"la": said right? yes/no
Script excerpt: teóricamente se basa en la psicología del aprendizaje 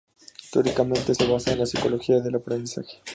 yes